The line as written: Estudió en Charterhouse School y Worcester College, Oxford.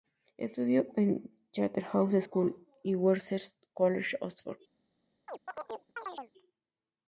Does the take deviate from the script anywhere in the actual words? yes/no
no